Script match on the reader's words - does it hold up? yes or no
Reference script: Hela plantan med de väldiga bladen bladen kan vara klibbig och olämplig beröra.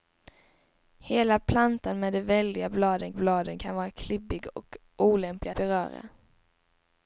yes